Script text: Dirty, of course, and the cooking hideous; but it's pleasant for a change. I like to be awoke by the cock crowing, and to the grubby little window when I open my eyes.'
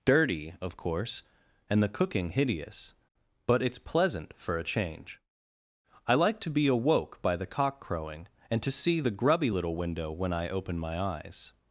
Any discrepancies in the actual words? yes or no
yes